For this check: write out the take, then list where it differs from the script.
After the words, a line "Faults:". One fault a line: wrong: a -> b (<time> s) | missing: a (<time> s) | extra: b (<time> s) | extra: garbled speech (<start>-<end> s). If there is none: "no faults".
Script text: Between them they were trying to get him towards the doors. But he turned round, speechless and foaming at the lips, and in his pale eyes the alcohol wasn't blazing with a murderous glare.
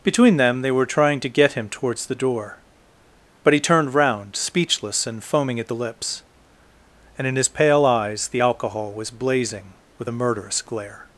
Between them they were trying to get him towards the door. But he turned round, speechless and foaming at the lips, and in his pale eyes the alcohol was blazing with a murderous glare.
Faults:
wrong: doors -> door (2.1 s)
wrong: wasn't -> was (8.9 s)